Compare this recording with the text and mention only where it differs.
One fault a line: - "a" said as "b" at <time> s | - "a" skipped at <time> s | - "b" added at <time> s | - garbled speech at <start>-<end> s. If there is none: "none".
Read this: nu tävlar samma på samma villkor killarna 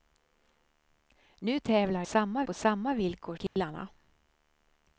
none